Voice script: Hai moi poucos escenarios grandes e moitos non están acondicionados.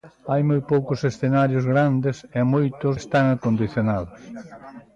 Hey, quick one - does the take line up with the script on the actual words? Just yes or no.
no